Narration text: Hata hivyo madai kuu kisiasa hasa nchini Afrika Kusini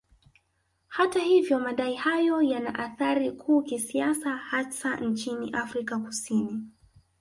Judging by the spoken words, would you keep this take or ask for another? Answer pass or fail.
fail